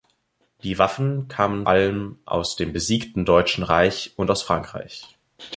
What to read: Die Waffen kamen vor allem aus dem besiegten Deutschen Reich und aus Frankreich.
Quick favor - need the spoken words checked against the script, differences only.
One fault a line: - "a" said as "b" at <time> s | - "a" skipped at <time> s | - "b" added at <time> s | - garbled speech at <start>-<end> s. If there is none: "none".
- "vor" skipped at 1.7 s